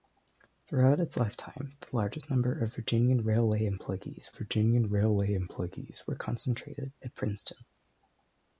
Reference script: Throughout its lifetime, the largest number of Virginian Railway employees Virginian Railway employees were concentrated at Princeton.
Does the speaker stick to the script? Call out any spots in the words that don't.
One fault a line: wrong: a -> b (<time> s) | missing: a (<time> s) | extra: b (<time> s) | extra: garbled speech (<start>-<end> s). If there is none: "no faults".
no faults